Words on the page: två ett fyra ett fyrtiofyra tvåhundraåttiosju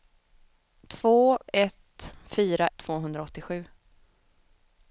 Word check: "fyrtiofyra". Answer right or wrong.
wrong